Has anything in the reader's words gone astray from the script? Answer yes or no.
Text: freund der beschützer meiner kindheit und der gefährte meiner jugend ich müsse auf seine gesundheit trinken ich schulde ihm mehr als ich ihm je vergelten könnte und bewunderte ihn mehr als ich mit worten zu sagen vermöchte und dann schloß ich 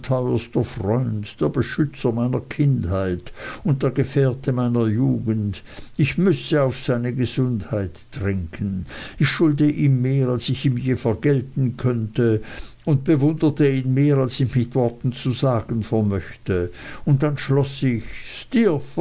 no